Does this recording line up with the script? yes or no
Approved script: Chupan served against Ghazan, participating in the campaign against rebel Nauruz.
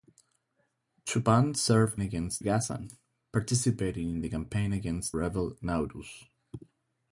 yes